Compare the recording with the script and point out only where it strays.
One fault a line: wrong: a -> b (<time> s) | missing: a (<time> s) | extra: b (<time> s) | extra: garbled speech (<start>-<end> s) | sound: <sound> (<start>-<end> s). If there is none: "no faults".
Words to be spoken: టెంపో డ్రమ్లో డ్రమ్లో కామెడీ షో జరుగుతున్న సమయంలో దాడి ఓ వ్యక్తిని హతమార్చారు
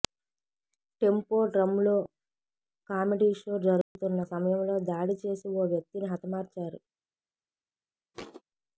missing: డ్రమ్లో (1.9 s)
sound: dropout (3.8-4.0 s)
extra: చేసి (5.2 s)
sound: thud (8.1-8.4 s)